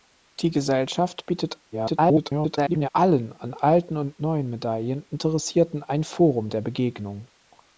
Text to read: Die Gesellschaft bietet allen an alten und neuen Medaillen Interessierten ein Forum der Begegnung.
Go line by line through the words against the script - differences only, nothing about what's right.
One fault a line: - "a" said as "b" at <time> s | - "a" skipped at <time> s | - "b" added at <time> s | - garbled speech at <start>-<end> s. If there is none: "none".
- garbled speech at 1.7-2.9 s